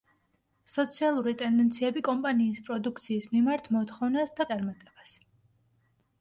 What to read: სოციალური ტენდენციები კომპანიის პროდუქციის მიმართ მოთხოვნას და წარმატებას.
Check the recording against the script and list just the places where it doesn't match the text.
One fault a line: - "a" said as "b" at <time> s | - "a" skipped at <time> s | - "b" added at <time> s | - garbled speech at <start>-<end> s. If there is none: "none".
none